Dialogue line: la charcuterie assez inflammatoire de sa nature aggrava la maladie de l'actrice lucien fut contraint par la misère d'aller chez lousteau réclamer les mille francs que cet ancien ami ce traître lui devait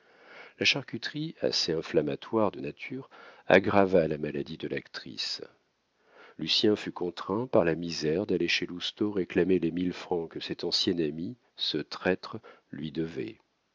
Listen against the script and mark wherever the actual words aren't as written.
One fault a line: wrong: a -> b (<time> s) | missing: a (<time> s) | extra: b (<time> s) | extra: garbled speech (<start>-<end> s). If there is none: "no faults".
missing: sa (2.6 s)